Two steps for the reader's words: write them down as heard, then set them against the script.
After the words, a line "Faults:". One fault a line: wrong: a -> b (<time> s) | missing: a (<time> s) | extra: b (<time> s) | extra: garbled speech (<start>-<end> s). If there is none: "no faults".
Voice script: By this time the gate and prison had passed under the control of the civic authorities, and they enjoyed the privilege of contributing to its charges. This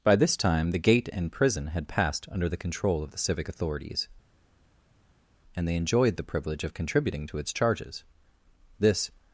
By this time the gate and prison had passed under the control of the civic authorities, and they enjoyed the privilege of contributing to its charges. This
Faults:
no faults